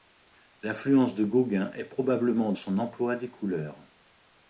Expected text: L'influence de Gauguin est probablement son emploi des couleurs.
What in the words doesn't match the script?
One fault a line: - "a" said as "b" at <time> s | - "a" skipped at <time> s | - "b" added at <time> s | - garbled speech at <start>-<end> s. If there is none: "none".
none